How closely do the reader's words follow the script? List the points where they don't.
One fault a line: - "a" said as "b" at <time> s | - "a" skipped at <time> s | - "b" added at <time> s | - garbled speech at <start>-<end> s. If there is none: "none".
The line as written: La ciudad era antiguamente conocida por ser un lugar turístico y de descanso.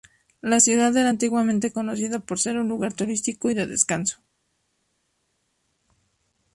none